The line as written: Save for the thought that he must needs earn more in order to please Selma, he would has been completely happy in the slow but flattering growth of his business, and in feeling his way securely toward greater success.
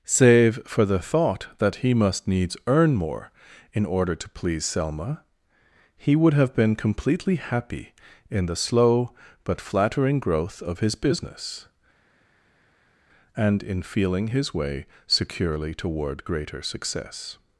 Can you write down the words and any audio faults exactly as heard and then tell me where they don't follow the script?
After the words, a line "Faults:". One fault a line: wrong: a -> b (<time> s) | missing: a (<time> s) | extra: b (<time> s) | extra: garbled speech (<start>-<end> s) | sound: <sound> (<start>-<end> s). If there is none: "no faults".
Save for the thought that he must needs earn more in order to please Selma, he would have been completely happy in the slow but flattering growth of his business, and in feeling his way securely toward greater success.
Faults:
wrong: has -> have (6.3 s)